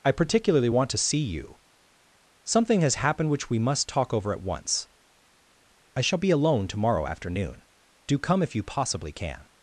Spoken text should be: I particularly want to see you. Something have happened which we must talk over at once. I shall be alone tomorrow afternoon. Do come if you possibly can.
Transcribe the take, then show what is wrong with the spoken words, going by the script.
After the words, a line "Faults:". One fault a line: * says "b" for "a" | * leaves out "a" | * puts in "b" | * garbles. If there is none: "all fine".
I particularly want to see you. Something has happened which we must talk over at once. I shall be alone tomorrow afternoon. Do come if you possibly can.
Faults:
* says "has" for "have"